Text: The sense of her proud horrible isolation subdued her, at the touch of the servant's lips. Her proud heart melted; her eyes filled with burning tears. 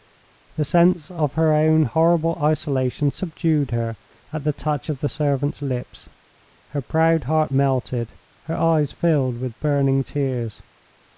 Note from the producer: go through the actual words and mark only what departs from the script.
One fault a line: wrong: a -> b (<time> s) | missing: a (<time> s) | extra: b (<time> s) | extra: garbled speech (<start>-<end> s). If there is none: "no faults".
wrong: proud -> own (1.5 s)